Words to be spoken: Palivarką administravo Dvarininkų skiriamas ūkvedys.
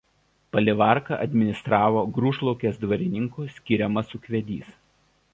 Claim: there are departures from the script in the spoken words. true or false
true